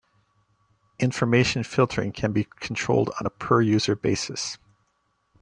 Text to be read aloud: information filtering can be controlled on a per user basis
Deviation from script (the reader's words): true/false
false